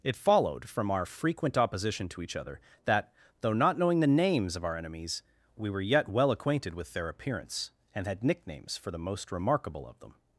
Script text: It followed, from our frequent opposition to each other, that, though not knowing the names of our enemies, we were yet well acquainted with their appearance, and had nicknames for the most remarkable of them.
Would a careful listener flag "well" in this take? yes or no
no